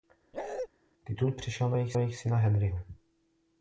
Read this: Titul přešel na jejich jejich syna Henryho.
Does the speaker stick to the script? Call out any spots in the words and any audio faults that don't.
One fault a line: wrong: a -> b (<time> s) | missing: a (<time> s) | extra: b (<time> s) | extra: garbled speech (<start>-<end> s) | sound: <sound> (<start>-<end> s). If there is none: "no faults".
sound: bark (0.3-0.7 s)